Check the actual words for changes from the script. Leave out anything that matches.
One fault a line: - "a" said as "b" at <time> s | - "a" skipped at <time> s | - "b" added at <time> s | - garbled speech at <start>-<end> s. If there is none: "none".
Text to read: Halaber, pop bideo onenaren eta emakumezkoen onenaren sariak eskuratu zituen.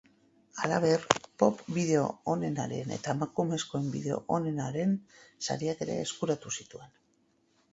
- "bideo" added at 4.0 s
- "ere" added at 5.9 s